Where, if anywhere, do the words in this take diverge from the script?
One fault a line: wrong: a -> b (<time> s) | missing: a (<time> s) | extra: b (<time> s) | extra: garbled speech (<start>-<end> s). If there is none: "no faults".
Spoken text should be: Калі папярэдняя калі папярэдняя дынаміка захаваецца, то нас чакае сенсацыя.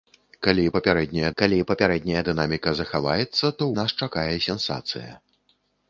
no faults